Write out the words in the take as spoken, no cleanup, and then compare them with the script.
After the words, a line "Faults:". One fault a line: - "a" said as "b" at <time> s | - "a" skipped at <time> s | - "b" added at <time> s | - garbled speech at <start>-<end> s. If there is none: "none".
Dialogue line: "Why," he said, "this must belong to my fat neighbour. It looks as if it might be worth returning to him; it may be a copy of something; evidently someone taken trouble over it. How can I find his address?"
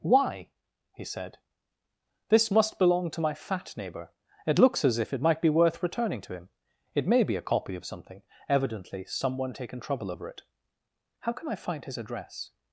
"Why," he said, "this must belong to my fat neighbour. It looks as if it might be worth returning to him; it may be a copy of something; evidently someone taken trouble over it. How can I find his address?"
Faults:
none